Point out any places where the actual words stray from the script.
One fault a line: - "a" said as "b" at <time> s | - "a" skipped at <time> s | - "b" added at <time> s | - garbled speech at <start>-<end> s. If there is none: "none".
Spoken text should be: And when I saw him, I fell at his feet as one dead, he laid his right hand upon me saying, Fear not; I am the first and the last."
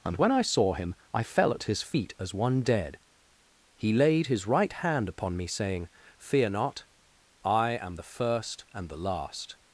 none